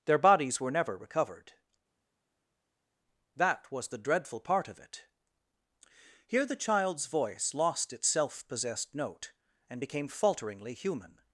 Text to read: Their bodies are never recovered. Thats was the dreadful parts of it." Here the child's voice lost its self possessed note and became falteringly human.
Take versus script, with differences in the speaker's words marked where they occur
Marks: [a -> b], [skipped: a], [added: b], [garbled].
Their bodies [are -> were] never recovered. [Thats -> That] was the dreadful [parts -> part] of it." Here the child's voice lost its self possessed note and became falteringly human.